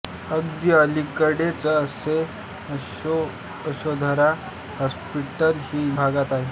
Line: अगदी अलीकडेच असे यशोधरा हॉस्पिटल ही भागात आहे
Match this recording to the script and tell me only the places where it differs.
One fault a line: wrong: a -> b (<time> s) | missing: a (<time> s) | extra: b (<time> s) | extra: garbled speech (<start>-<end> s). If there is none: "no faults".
no faults